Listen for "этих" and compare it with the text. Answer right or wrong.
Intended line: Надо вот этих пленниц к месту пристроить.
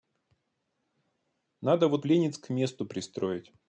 wrong